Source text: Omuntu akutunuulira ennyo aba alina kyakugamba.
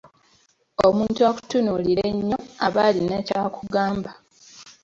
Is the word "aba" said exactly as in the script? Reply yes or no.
yes